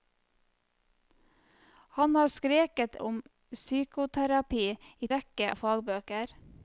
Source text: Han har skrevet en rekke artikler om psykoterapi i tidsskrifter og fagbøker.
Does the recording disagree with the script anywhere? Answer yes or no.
yes